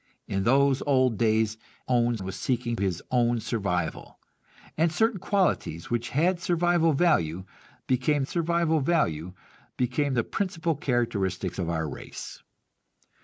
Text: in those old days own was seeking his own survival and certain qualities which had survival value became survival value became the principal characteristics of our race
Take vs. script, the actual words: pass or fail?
pass